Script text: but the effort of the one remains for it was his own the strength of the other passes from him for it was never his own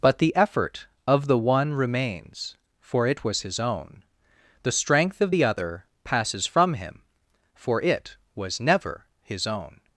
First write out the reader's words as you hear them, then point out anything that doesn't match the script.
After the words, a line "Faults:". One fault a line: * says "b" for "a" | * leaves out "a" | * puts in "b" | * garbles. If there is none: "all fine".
but the effort of the one remains for it was his own the strength of the other passes from him for it was never his own
Faults:
all fine